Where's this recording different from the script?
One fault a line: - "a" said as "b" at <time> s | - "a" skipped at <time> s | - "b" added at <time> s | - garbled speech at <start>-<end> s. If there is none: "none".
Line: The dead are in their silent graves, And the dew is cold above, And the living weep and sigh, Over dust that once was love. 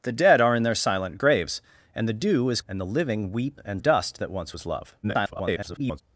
- "cold above" skipped at 2.6 s
- "sigh Over" skipped at 3.8 s
- garbled speech at 5.0-6.0 s